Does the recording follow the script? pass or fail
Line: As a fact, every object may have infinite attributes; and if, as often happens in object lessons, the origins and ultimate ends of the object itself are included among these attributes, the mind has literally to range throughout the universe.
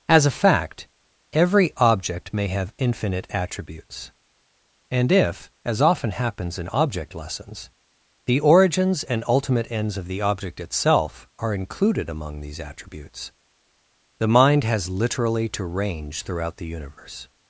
pass